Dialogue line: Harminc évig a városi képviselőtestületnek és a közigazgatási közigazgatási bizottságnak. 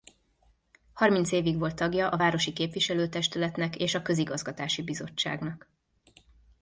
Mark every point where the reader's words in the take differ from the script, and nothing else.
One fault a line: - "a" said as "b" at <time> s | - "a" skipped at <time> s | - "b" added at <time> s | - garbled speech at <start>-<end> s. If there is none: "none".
- "volt tagja" added at 1.6 s
- "közigazgatási" skipped at 4.8 s